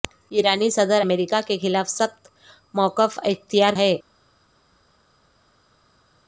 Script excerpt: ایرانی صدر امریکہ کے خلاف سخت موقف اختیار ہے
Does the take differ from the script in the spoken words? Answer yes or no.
no